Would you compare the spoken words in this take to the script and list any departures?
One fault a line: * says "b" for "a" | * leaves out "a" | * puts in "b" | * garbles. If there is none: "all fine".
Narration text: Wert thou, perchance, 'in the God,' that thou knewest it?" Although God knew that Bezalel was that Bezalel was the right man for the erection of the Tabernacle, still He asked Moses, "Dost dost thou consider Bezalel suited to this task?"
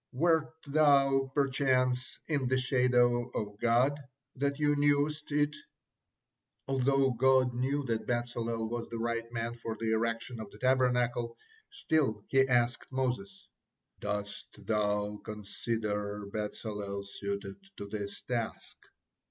* puts in "shadow of"
* leaves out "that Bezalel was"
* leaves out "dost"